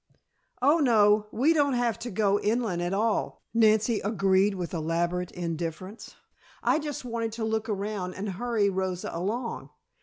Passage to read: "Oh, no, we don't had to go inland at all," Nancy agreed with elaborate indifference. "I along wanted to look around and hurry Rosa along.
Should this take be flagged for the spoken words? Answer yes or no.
yes